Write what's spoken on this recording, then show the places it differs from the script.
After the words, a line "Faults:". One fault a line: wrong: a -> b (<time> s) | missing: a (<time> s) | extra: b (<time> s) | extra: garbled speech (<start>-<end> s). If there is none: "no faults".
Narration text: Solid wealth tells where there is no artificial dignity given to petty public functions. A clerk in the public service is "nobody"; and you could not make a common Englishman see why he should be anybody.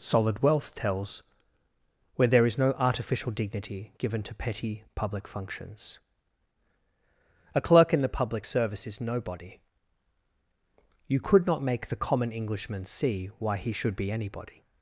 Solid wealth tells where there is no artificial dignity given to petty public functions. A clerk in the public service is "nobody"; you could not make the common Englishman see why he should be anybody.
Faults:
missing: and (9.6 s)
wrong: a -> the (11.9 s)